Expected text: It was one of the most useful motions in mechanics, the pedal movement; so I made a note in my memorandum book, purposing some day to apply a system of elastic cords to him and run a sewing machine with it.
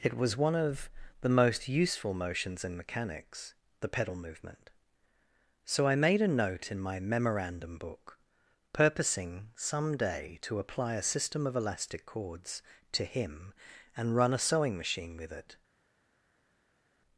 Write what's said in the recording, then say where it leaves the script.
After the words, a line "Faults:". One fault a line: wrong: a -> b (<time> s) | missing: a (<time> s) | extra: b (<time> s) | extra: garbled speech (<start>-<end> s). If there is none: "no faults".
It was one of the most useful motions in mechanics, the pedal movement; so I made a note in my memorandum book, purposing some day to apply a system of elastic cords to him and run a sewing machine with it.
Faults:
no faults